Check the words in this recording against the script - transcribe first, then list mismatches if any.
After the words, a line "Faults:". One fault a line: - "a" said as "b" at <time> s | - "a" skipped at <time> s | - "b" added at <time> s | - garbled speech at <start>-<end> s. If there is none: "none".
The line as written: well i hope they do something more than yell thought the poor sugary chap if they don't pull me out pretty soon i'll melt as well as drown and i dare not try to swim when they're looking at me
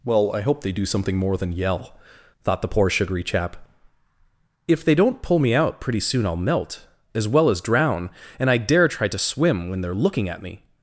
well i hope they do something more than yell thought the poor sugary chap if they don't pull me out pretty soon i'll melt as well as drown and i dare try to swim when they're looking at me
Faults:
- "not" skipped at 8.9 s